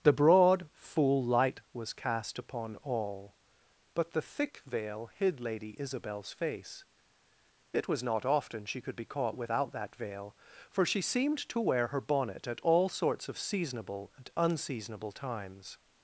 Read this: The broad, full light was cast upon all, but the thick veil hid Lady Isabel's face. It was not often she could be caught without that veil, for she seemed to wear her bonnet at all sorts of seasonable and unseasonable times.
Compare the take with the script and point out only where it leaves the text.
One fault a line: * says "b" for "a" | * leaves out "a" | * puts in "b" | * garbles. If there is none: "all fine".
all fine